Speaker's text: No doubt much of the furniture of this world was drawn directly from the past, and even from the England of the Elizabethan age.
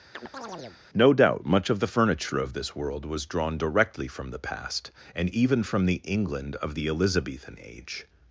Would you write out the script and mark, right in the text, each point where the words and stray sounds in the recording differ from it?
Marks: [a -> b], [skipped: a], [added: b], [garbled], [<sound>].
[chirp] No doubt much of the furniture of this world was drawn directly from the past, and even from the England of the Elizabethan age.